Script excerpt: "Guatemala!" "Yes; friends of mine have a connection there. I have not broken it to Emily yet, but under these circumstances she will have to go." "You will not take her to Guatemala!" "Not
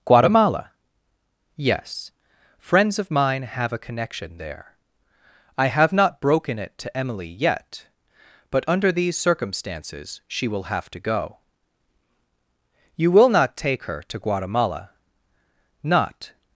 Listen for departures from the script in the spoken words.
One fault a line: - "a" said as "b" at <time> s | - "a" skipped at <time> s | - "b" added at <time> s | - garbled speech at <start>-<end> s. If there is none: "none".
none